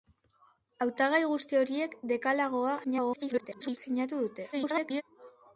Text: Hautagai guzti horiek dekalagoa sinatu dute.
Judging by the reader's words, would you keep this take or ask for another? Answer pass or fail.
fail